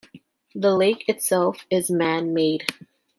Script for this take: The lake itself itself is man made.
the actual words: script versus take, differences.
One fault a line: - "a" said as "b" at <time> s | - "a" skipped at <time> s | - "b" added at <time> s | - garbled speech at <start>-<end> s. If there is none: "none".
- "itself" skipped at 1.6 s